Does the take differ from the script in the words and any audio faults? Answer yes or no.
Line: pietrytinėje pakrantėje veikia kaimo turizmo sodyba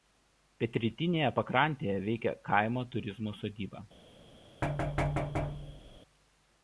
yes